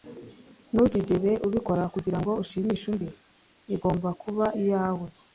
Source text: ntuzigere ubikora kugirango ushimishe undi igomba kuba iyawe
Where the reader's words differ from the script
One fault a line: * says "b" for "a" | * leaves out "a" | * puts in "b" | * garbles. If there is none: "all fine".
all fine